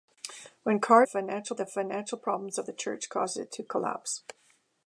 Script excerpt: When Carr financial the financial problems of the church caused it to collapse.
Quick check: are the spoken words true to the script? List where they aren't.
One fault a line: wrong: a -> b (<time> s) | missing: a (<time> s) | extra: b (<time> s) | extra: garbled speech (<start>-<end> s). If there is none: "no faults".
no faults